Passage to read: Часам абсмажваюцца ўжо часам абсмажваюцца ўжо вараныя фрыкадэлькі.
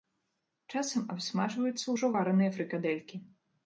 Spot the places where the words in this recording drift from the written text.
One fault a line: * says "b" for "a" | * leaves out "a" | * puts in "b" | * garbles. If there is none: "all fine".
* leaves out "часам абсмажваюцца ўжо"